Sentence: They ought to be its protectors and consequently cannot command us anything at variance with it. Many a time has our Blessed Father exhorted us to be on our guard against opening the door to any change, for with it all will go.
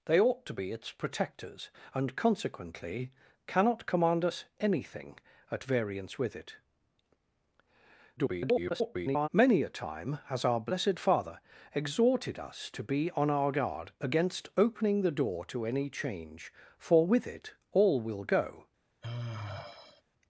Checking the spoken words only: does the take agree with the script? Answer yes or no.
no